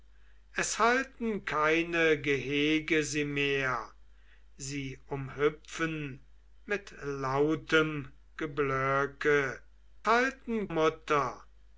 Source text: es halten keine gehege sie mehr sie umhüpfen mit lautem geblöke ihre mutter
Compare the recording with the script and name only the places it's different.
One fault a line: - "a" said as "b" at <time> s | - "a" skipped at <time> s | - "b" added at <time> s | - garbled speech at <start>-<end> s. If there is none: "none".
- "ihre" said as "halten" at 10.1 s